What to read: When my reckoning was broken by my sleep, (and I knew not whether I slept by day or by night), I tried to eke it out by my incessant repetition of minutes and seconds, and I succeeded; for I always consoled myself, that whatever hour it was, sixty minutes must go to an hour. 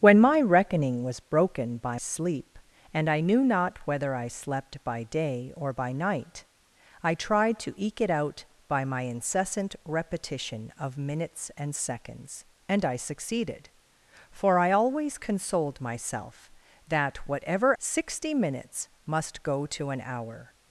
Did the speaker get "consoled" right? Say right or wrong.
right